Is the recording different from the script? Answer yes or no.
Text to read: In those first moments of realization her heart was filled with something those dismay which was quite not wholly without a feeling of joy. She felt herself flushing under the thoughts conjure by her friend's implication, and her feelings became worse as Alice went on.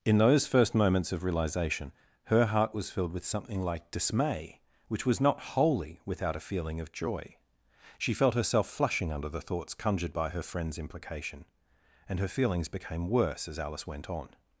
yes